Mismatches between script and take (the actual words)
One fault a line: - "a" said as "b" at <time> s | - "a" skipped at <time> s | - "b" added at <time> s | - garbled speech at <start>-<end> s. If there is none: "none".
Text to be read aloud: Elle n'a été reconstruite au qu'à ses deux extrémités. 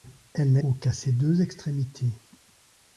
- "été reconstruite" skipped at 0.6 s